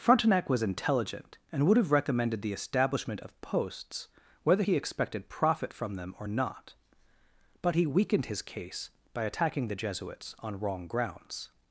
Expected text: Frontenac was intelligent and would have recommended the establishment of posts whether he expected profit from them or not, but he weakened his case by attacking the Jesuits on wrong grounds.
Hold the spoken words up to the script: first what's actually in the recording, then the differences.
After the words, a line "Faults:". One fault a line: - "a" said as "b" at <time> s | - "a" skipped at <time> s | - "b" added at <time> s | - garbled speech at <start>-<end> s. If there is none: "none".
Frontenac was intelligent and would have recommended the establishment of posts whether he expected profit from them or not, but he weakened his case by attacking the Jesuits on wrong grounds.
Faults:
none